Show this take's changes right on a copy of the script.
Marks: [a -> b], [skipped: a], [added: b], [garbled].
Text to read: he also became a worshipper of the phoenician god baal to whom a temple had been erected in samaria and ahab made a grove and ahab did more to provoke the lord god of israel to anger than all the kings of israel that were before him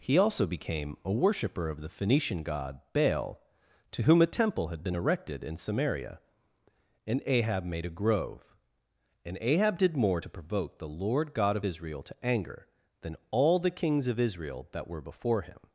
he also became a worshipper of the phoenician god baal to whom a temple had been erected in samaria and ahab made a grove and ahab did more to provoke the lord god of israel to anger than all the kings of israel that were before him